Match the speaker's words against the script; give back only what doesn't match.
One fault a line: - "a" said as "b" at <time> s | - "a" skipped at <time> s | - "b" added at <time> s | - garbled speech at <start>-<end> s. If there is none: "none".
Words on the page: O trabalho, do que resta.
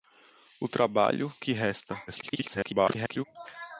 - "do" skipped at 1.3 s
- garbled speech at 2.1-3.2 s